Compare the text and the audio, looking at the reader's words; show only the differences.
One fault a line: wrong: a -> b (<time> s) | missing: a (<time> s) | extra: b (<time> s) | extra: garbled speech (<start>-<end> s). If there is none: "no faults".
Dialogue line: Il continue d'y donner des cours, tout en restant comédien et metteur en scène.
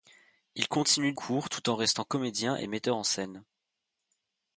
missing: d'y donner des (1.1 s)